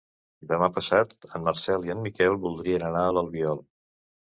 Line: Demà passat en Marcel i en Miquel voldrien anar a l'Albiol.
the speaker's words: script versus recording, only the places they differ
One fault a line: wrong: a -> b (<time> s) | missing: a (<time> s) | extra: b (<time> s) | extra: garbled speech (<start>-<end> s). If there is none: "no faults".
no faults